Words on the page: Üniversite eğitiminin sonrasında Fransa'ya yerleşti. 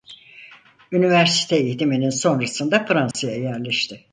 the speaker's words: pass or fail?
pass